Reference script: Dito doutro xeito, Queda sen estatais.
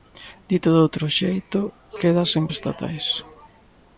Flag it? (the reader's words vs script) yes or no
no